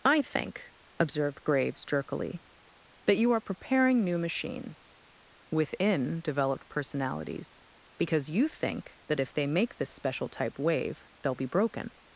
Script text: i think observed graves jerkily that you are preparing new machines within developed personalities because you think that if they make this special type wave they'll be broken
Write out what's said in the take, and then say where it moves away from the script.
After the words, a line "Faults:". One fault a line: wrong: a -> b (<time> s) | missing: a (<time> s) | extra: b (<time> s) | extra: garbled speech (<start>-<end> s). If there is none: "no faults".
i think observed graves jerkily that you are preparing new machines within developed personalities because you think that if they make this special type wave they'll be broken
Faults:
no faults